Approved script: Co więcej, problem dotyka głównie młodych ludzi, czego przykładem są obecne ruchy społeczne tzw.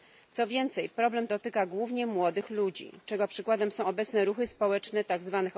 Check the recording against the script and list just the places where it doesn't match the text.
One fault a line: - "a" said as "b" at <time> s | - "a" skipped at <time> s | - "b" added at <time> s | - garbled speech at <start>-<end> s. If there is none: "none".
none